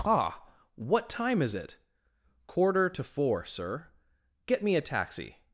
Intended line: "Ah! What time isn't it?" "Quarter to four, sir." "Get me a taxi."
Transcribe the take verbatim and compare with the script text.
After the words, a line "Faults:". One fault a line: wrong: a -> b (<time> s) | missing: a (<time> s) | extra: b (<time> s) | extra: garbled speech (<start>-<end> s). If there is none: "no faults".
"Ah! What time is it?" "Quarter to four, sir." "Get me a taxi."
Faults:
wrong: isn't -> is (1.4 s)